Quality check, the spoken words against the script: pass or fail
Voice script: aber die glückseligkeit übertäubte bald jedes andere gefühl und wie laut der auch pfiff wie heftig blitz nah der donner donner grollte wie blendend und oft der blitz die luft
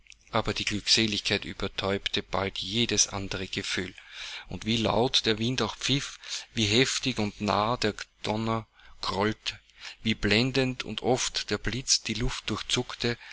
fail